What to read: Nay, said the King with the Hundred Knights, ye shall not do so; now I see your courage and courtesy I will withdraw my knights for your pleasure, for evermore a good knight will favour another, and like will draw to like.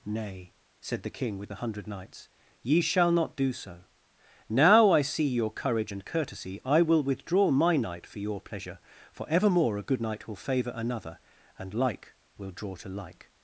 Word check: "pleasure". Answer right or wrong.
right